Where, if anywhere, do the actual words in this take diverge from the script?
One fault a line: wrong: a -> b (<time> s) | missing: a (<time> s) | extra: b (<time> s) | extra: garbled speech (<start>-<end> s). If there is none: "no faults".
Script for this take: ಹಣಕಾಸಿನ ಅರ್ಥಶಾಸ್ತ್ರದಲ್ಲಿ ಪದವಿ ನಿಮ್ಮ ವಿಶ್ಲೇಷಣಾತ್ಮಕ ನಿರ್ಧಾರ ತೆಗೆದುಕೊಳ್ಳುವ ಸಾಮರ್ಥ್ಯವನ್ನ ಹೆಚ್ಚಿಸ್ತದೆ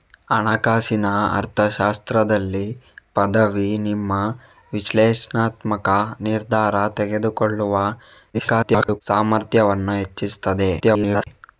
extra: garbled speech (8.3-9.0 s)
extra: garbled speech (10.8-11.3 s)